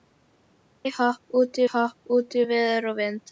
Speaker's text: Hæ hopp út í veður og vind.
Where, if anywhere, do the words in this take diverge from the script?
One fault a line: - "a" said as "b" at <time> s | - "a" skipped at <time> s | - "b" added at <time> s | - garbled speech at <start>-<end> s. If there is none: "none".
- "hopp út" added at 1.7 s